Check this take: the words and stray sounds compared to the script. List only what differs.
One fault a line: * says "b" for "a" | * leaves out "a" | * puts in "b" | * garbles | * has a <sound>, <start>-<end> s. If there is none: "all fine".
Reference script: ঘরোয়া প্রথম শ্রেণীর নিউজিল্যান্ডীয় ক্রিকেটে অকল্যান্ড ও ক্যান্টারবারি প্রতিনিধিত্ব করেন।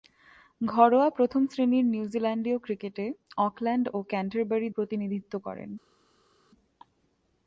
all fine